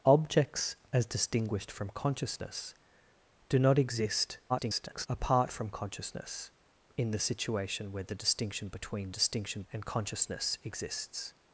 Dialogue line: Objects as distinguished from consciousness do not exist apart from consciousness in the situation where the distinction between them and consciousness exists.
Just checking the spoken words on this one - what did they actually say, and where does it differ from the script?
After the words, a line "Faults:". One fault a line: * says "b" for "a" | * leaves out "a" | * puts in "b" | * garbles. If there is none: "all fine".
Objects as distinguished from consciousness do not exist [garbled] apart from consciousness in the situation where the distinction between distinction and consciousness exists.
Faults:
* garbles
* says "distinction" for "them"